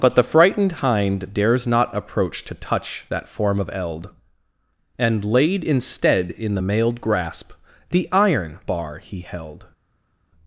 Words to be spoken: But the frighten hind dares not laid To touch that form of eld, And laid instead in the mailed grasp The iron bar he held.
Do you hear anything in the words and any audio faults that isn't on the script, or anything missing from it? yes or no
yes